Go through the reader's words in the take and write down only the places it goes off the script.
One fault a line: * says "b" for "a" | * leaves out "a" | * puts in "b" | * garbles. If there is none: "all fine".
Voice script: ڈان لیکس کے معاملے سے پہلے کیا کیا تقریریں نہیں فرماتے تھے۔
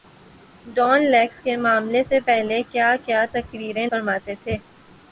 * leaves out "نہیں"